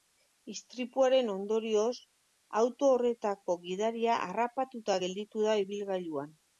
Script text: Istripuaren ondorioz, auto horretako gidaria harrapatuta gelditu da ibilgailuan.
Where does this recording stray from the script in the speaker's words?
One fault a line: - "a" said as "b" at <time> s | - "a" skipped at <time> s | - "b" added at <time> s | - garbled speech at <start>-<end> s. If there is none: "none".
none